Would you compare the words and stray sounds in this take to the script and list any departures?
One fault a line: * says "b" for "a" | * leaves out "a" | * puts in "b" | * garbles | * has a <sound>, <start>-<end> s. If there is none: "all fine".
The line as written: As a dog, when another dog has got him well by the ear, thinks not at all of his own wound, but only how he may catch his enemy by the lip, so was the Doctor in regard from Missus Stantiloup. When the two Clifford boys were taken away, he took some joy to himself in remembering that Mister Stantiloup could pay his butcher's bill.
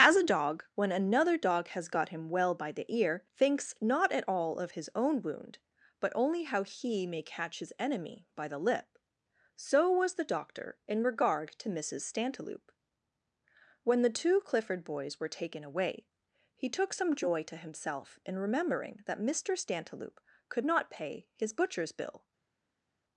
* says "to" for "from"
* puts in "not"